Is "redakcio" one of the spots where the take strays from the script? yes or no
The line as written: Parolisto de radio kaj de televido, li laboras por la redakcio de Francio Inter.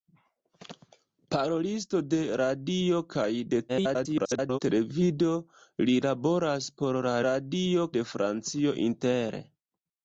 yes